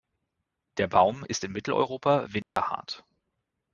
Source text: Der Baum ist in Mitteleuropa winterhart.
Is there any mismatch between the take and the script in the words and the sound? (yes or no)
yes